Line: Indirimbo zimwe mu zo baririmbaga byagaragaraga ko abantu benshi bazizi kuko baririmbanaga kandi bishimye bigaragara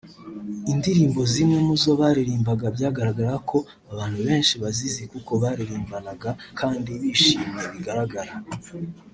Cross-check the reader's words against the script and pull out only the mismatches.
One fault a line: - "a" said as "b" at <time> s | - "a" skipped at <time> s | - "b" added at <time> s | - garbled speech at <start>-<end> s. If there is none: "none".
none